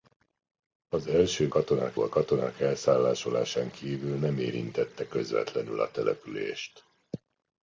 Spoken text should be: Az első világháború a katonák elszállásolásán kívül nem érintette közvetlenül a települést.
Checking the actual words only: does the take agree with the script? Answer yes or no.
no